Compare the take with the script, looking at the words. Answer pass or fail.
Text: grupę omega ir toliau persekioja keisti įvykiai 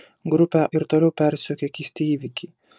fail